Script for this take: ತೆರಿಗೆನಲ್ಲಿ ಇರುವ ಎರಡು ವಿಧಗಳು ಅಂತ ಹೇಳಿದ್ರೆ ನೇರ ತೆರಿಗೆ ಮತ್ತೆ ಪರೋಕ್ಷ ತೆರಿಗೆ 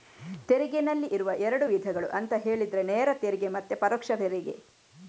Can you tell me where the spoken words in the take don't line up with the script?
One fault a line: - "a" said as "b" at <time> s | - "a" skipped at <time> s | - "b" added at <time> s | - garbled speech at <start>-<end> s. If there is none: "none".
none